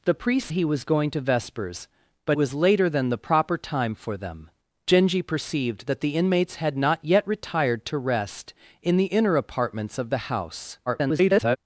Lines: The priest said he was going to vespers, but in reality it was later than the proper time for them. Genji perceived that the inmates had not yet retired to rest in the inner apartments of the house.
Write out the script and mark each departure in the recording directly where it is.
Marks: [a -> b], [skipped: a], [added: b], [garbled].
The priest [skipped: said] he was going to vespers, but [skipped: in reality it] was later than the proper time for them. Genji perceived that the inmates had not yet retired to rest in the inner apartments of the house. [garbled]